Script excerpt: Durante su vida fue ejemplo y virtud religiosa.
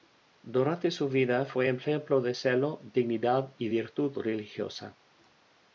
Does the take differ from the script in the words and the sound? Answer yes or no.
yes